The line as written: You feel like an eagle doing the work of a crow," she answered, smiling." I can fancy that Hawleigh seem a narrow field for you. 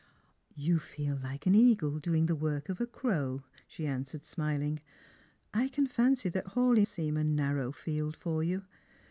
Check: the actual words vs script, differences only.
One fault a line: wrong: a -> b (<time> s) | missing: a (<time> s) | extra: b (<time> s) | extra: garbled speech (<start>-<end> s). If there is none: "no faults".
no faults